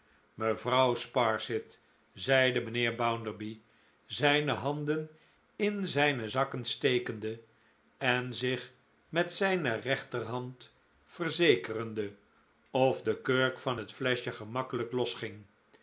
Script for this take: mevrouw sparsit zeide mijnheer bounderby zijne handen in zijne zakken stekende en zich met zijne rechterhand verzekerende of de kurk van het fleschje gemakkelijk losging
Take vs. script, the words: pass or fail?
pass